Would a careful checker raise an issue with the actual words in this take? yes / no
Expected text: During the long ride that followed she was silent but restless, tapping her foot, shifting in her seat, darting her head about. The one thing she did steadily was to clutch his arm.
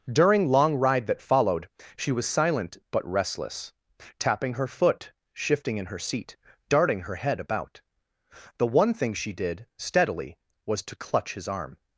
yes